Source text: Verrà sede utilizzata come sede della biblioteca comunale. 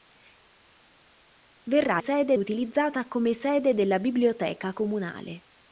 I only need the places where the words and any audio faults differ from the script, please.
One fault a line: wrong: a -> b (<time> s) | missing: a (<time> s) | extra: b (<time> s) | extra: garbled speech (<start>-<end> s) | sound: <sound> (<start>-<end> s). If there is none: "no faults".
no faults